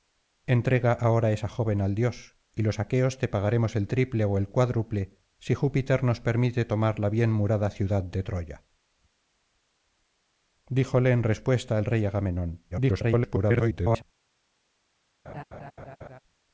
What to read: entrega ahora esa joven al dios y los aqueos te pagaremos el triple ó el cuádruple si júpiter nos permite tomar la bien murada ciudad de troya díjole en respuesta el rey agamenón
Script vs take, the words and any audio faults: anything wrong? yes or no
yes